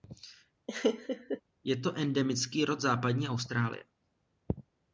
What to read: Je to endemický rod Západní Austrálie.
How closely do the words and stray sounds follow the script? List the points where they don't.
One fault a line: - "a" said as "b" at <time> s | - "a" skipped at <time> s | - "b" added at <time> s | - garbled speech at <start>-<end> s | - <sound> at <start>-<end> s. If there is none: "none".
- laugh at 0.7-1.4 s